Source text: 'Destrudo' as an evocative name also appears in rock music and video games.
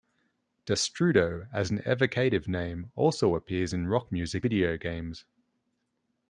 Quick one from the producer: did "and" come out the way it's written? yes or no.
no